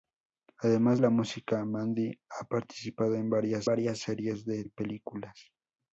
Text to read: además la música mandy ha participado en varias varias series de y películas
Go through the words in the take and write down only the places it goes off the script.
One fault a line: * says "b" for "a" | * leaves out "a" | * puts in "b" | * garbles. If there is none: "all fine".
all fine